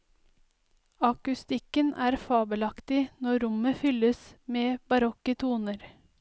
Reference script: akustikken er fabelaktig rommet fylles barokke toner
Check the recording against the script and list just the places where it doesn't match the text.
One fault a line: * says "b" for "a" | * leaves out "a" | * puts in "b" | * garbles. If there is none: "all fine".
* puts in "når"
* puts in "med"